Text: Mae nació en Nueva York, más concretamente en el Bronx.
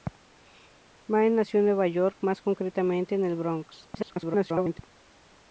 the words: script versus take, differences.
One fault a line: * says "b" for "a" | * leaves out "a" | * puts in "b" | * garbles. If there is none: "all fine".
* garbles